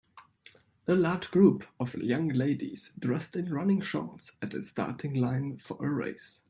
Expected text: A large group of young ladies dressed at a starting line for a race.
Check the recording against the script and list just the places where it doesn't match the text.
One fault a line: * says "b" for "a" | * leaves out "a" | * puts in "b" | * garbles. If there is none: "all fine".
* puts in "in running shorts"